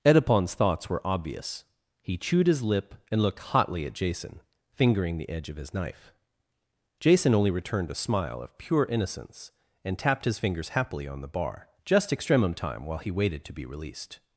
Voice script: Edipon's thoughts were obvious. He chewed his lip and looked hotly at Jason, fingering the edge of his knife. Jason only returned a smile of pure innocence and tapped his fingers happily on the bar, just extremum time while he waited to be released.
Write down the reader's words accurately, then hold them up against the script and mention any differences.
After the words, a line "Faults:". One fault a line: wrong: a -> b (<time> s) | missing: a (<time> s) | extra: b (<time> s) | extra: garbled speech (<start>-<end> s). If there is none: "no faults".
Edipon's thoughts were obvious. He chewed his lip and looked hotly at Jason, fingering the edge of his knife. Jason only returned a smile of pure innocence and tapped his fingers happily on the bar, just extremum time while he waited to be released.
Faults:
no faults